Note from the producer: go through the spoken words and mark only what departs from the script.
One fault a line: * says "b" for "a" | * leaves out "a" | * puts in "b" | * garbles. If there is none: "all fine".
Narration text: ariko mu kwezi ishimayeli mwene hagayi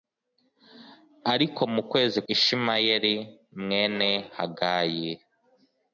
all fine